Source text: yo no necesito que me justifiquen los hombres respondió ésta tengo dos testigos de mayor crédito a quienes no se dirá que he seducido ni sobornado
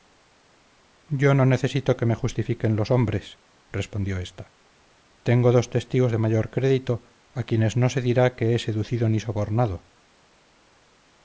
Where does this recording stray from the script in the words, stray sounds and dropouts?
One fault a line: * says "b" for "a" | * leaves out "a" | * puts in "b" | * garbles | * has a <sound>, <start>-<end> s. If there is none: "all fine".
all fine